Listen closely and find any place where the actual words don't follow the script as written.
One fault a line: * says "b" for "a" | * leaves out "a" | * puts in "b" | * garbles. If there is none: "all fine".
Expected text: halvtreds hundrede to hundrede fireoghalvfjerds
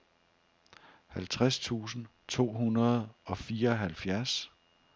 * says "tusind" for "hundrede"
* puts in "og"